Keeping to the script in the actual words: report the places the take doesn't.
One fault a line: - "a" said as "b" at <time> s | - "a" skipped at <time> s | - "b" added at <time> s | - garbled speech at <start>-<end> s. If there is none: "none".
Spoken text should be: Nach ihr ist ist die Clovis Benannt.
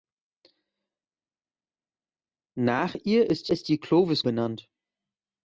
none